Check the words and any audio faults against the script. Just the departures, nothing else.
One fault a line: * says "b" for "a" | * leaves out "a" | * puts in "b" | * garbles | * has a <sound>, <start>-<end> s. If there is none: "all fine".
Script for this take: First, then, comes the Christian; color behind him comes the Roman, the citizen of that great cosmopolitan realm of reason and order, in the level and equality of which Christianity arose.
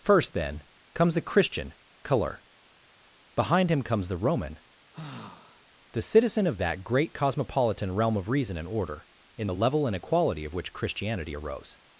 * has a sigh, 4.9-5.6 s